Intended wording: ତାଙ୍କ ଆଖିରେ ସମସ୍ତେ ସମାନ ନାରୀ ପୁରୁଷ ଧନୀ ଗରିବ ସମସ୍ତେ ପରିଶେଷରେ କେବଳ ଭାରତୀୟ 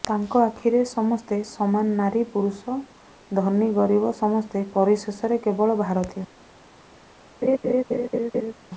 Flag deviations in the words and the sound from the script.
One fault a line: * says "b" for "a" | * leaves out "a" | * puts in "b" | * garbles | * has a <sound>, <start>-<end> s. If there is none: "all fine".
* has a laugh, 7.4-8.5 s